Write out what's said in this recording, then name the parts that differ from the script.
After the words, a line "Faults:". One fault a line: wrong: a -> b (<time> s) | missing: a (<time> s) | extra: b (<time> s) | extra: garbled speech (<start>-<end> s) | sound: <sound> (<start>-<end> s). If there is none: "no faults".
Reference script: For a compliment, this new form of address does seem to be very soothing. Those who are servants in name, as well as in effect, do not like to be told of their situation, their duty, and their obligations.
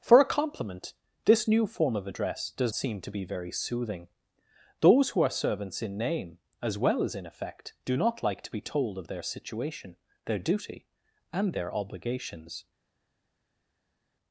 For a compliment, this new form of address does seem to be very soothing. Those who are servants in name, as well as in effect, do not like to be told of their situation, their duty, and their obligations.
Faults:
no faults